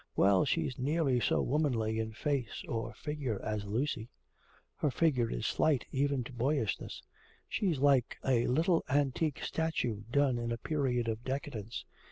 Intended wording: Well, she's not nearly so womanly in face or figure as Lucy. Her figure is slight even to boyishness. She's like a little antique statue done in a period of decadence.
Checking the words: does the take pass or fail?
fail